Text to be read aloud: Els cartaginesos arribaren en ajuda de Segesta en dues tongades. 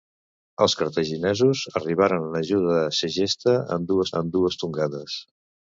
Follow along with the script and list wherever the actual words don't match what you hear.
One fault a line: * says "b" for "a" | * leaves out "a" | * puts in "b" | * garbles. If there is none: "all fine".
* puts in "en dues"